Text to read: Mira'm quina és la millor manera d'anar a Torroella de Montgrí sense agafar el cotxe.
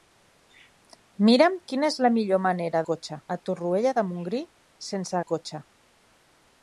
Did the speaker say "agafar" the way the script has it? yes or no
no